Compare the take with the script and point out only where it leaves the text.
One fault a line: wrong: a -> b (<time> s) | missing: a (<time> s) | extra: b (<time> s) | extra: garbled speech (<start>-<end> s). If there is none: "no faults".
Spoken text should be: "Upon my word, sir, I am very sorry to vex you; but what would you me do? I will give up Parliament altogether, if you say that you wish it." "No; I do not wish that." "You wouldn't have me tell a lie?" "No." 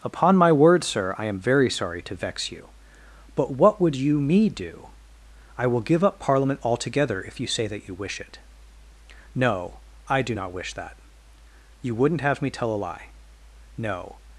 no faults